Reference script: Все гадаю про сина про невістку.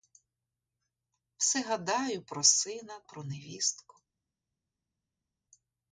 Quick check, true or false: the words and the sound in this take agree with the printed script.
true